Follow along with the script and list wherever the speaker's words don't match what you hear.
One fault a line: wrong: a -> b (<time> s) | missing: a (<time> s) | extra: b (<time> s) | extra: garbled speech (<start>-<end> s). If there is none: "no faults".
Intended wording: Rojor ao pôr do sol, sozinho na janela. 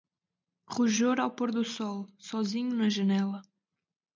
no faults